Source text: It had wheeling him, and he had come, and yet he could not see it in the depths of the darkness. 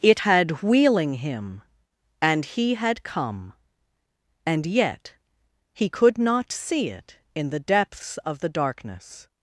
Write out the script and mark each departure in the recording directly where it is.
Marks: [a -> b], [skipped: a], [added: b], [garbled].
It had wheeling him, and he had come, and yet he could not see it in the depths of the darkness.